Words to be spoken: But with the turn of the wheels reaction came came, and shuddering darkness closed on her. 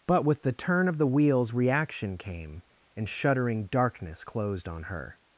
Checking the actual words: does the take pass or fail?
fail